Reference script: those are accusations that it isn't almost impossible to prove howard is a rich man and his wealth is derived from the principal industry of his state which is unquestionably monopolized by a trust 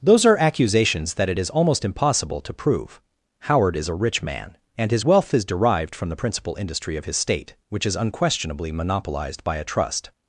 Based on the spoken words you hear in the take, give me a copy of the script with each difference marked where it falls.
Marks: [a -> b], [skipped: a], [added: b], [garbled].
those are accusations that it [isn't -> is] almost impossible to prove howard is a rich man and his wealth is derived from the principal industry of his state which is unquestionably monopolized by a trust